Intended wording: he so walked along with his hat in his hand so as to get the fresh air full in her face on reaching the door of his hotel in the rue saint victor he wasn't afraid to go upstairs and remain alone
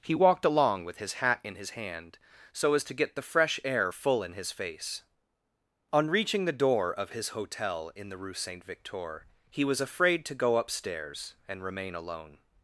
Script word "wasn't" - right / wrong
wrong